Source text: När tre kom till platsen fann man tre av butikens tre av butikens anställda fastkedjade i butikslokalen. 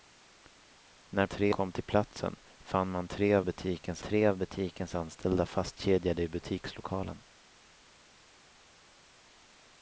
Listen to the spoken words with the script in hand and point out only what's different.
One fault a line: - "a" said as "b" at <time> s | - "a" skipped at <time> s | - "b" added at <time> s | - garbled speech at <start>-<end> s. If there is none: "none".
none